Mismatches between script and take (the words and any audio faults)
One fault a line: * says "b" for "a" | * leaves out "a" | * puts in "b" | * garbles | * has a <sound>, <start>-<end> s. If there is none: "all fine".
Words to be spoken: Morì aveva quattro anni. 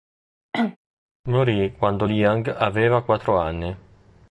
* has a cough, 0.5-0.8 s
* puts in "quando Liang"